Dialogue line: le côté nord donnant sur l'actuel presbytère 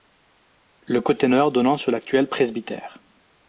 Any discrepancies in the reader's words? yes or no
no